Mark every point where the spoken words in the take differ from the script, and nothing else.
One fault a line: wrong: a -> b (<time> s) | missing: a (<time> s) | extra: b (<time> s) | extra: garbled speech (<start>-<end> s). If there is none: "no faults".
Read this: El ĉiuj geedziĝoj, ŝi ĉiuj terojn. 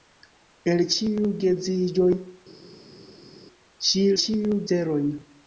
no faults